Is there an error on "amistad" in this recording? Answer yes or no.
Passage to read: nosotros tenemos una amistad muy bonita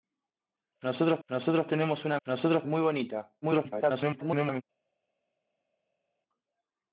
yes